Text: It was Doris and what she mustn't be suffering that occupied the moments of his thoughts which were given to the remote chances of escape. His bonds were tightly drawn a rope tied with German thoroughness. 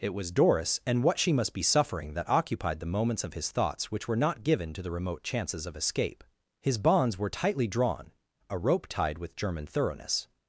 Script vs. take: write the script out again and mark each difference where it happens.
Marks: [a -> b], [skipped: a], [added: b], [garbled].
It was Doris and what she [mustn't -> must] be suffering that occupied the moments of his thoughts which were [added: not] given to the remote chances of escape. His bonds were tightly drawn a rope tied with German thoroughness.